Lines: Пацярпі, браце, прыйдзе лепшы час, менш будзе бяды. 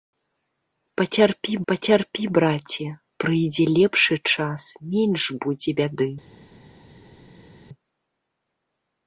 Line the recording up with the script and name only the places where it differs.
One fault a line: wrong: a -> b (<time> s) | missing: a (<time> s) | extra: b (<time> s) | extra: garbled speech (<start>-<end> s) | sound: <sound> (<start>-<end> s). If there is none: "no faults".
extra: пацярпі (1.7 s)